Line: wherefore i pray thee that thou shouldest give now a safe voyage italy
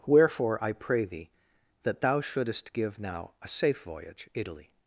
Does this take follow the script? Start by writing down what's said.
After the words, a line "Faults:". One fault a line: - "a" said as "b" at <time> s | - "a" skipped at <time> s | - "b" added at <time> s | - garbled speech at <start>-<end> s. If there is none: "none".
wherefore i pray thee that thou shouldest give now a safe voyage italy
Faults:
none